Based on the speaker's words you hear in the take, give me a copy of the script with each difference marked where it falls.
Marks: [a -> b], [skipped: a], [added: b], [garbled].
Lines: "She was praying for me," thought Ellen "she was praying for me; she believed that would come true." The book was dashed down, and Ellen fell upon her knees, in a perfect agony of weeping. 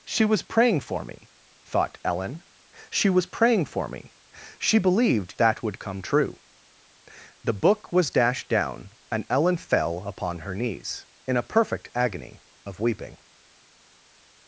"She was praying for me," thought Ellen "she was praying for me; she believed that would come true." The book was dashed down, and Ellen fell upon her knees, in a perfect agony of weeping.